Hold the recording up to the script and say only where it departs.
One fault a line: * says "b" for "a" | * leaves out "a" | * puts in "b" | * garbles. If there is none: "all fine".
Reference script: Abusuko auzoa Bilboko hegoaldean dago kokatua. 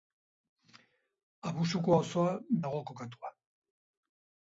* leaves out "Bilboko hegoaldean"